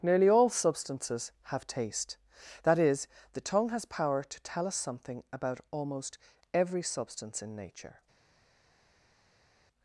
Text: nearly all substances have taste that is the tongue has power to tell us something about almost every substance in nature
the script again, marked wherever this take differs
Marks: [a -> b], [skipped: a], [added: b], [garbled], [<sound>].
nearly all substances have taste that is the tongue has power to tell us something about almost every substance in nature